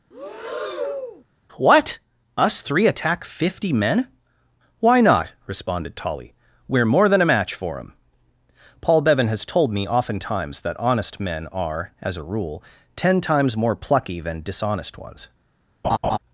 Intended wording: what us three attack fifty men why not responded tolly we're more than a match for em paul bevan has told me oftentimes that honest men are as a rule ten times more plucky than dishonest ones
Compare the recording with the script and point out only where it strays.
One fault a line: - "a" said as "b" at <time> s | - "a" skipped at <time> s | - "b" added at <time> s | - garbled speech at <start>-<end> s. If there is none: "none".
none